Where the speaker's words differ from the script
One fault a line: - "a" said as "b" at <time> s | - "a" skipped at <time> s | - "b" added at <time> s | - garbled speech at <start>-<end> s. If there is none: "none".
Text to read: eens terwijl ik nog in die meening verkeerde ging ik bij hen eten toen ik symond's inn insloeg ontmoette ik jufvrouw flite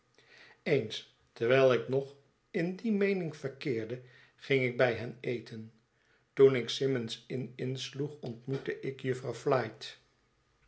none